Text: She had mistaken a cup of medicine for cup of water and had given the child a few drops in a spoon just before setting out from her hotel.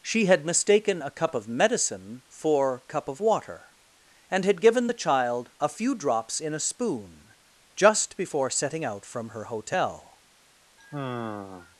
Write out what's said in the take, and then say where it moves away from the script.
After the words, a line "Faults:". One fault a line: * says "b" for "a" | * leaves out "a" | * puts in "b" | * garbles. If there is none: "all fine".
She had mistaken a cup of medicine for cup of water and had given the child a few drops in a spoon just before setting out from her hotel.
Faults:
all fine